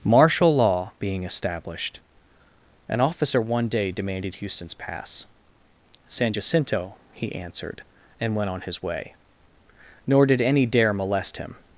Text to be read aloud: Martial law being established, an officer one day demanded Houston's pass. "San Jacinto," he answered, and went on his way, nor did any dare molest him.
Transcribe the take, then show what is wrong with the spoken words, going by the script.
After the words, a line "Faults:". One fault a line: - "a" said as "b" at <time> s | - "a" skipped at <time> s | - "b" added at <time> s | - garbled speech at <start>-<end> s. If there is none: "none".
Martial law being established, an officer one day demanded Houston's pass. "San Jacinto," he answered, and went on his way, nor did any dare molest him.
Faults:
none